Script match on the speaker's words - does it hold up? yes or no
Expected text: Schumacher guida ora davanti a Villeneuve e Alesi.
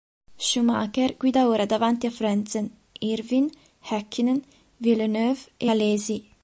no